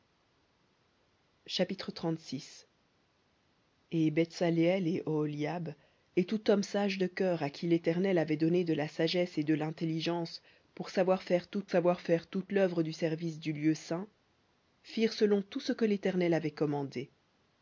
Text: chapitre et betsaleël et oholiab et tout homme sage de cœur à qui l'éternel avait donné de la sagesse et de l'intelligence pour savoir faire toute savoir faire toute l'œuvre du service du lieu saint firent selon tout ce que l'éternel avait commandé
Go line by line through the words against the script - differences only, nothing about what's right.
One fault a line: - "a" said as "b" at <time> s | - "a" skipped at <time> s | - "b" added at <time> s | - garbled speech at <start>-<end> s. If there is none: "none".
none